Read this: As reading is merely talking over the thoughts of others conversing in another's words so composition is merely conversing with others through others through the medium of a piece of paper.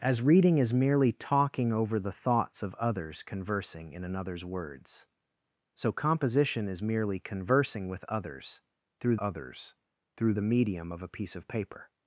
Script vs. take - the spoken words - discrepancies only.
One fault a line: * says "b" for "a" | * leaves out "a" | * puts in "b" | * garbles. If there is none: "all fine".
all fine